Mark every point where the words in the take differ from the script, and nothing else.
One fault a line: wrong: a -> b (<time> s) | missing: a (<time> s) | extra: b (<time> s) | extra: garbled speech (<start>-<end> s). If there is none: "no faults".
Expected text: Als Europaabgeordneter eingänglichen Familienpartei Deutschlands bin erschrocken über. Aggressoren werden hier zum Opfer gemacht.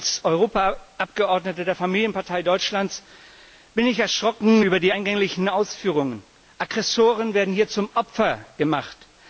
wrong: eingänglichen -> der (1.6 s)
extra: ich (3.9 s)
extra: die eingänglichen Ausführungen (4.8 s)